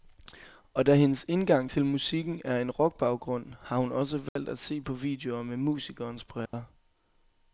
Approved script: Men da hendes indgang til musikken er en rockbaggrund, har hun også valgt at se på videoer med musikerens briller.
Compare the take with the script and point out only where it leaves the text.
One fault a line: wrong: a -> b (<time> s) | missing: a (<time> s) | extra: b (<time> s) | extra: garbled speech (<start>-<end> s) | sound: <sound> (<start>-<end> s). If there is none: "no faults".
wrong: Men -> Og (0.7 s)
sound: dropout (4.3-4.4 s)
sound: dropout (6.5-6.5 s)